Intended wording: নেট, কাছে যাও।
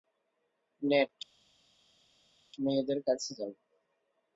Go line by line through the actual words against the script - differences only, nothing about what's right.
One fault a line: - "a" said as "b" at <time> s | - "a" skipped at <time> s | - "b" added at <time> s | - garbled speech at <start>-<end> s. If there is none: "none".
- "মেয়েদের" added at 2.6 s